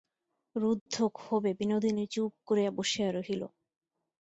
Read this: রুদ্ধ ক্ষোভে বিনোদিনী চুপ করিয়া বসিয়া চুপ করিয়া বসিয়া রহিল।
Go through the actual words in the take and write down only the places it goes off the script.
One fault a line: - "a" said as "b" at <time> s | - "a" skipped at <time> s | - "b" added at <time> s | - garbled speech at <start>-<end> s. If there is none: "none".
- "চুপ করিয়া বসিয়া" skipped at 3.1 s